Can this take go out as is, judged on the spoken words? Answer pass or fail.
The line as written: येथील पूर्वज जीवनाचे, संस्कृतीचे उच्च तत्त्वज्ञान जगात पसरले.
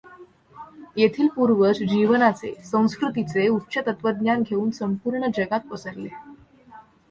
fail